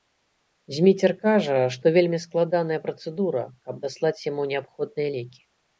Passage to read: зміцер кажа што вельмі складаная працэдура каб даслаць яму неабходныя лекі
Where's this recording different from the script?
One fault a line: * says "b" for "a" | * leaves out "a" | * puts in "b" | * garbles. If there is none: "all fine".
all fine